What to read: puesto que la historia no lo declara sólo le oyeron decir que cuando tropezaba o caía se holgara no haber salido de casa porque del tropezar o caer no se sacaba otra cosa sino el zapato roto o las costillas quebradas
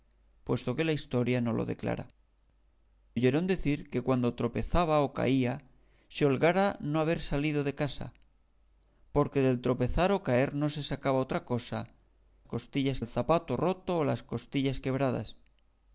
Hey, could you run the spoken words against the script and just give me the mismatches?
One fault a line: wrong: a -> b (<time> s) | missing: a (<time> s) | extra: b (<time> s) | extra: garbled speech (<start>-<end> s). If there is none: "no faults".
missing: sólo le (2.1 s)
wrong: sino -> costillas (12.4 s)